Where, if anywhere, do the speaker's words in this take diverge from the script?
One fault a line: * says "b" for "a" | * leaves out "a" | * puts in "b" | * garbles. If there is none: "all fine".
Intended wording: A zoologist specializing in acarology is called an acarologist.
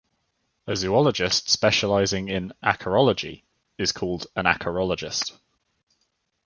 all fine